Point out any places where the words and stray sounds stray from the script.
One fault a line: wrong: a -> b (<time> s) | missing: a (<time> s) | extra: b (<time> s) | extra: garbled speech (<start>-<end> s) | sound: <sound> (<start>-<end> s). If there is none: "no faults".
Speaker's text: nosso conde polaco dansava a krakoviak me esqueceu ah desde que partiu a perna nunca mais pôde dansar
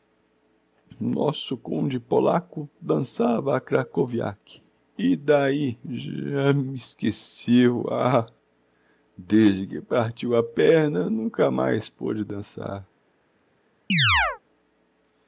extra: e d'ahi já (5.0 s)
sound: chirp (13.9-14.4 s)